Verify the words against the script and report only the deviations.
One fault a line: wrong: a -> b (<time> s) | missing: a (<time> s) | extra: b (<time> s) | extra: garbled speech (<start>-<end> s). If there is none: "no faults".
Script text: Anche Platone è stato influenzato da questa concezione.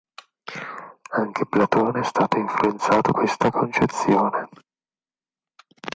missing: da (3.1 s)